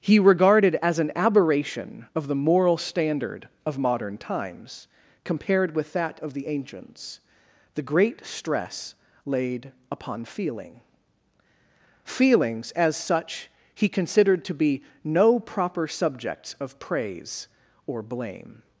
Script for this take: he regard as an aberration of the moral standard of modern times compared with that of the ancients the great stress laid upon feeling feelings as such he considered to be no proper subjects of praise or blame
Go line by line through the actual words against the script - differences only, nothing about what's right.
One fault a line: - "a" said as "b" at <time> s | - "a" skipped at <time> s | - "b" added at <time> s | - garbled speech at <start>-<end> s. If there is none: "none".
- "regard" said as "regarded" at 0.2 s